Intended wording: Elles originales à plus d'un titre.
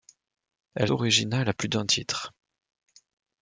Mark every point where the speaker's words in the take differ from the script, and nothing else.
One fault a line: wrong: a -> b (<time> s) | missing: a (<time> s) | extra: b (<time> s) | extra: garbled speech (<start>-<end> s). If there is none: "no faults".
no faults